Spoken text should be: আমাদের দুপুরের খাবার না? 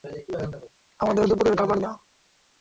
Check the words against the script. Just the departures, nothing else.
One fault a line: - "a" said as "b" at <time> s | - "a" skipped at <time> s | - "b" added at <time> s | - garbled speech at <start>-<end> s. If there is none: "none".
none